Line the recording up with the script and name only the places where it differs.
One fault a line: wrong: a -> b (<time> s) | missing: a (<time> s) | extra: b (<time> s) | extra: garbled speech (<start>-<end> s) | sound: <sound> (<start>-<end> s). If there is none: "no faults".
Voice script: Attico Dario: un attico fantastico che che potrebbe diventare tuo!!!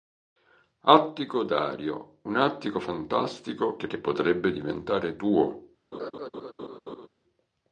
sound: laugh (5.9-7.1 s)